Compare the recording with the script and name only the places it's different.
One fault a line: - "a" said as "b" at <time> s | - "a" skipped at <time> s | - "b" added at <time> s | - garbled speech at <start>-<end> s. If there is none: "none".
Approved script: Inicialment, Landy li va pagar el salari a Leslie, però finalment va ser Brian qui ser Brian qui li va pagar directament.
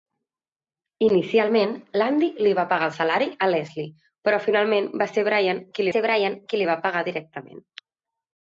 none